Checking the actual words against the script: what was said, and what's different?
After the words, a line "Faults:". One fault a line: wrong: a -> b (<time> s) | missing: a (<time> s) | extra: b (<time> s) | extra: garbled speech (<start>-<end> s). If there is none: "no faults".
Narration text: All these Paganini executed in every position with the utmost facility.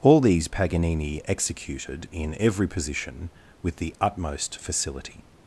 All these Paganini executed in every position with the utmost facility.
Faults:
no faults